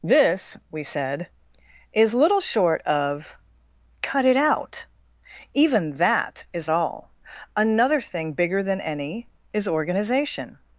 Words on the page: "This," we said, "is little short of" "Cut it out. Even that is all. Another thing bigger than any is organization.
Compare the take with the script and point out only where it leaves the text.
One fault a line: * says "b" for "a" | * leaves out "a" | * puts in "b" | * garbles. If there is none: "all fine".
all fine